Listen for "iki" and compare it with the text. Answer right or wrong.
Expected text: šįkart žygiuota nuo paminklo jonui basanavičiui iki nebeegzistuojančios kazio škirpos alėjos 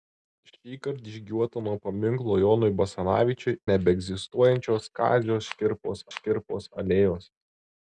wrong